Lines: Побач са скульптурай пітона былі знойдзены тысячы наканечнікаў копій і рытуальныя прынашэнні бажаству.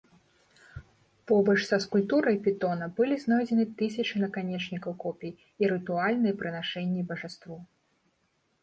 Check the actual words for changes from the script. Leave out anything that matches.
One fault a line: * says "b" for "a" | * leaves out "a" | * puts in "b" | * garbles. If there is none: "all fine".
all fine